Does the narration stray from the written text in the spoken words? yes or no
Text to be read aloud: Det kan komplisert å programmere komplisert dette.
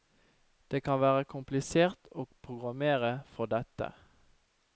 yes